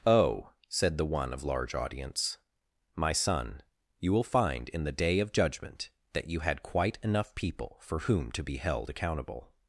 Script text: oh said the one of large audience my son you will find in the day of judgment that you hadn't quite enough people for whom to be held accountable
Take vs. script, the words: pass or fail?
fail